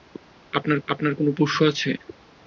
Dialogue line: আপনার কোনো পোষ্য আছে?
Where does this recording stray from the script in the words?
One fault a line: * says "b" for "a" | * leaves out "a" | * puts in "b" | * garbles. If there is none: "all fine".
* puts in "আপনার"